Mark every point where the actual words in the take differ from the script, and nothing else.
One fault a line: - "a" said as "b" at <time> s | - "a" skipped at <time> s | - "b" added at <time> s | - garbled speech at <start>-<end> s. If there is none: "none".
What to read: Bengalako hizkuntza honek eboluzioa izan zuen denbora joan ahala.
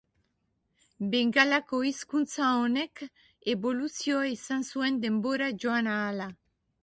none